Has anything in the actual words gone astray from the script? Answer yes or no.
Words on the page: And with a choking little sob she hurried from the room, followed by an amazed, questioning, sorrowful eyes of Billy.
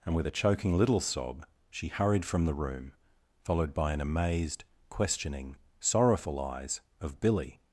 no